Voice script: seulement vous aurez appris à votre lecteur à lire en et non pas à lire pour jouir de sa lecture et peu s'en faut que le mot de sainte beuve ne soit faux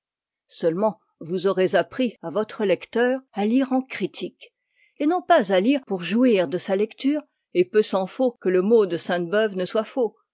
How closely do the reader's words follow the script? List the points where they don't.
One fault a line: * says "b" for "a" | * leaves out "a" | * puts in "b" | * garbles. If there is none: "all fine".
* puts in "critique"